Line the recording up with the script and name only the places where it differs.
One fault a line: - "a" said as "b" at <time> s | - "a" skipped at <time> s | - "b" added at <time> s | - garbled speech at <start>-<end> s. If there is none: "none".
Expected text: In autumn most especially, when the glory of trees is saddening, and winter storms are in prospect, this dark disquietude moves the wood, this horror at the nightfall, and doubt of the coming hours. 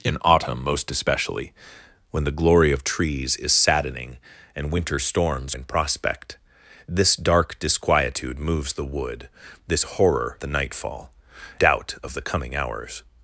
- "are" skipped at 5.6 s
- "at" skipped at 10.4 s
- "and" skipped at 11.1 s